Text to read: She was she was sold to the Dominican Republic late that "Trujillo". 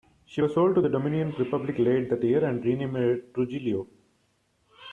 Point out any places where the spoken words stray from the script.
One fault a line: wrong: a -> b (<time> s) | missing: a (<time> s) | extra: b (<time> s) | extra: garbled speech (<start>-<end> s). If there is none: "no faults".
missing: she was (0.5 s)
extra: year and renamed (2.2 s)